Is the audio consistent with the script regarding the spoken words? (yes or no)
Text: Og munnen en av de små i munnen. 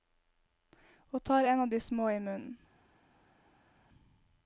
no